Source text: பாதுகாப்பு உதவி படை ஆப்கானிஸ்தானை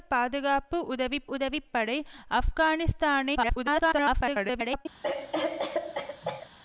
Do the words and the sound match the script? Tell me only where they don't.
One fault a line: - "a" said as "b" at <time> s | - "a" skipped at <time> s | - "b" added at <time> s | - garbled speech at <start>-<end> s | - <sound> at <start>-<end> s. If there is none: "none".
- "உதவி" added at 1.3 s
- garbled speech at 3.3-4.9 s
- cough at 5.0-6.5 s